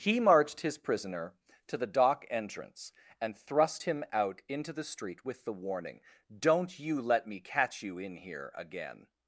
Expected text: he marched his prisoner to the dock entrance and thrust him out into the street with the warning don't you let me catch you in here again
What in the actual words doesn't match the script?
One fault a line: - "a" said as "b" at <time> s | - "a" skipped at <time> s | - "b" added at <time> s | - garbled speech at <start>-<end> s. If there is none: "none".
none